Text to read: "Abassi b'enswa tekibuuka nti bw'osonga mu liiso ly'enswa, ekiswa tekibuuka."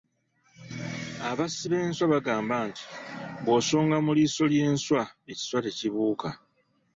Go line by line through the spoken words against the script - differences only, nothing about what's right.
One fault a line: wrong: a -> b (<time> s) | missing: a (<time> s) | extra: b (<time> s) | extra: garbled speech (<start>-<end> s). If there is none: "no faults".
wrong: tekibuuka -> bagamba (2.1 s)